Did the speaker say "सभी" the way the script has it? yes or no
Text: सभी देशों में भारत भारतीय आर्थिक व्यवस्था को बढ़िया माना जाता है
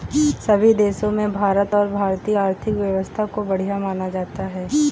yes